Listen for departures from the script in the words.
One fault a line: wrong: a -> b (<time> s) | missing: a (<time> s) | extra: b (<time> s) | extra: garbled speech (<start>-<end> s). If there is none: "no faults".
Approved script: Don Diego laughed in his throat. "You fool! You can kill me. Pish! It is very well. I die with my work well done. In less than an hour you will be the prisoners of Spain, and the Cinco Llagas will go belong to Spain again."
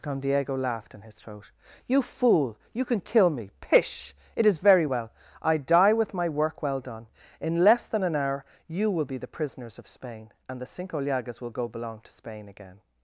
no faults